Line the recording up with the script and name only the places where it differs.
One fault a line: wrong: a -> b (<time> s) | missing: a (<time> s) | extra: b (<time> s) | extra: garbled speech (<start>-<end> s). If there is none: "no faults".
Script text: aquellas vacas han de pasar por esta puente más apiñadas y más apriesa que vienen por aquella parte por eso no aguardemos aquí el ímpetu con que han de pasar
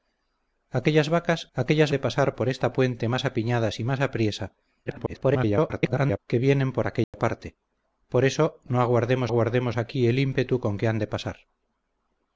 wrong: han -> aquellas (1.5 s)
extra: garbled speech (4.9-6.2 s)
extra: aguardemos (9.3 s)